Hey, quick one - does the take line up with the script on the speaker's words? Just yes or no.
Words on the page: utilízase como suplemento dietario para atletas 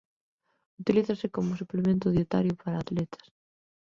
yes